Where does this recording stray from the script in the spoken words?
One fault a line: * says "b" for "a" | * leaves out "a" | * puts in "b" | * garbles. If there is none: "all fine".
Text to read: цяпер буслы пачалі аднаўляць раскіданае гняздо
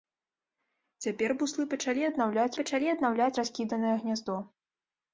* puts in "пачалі аднаўляць"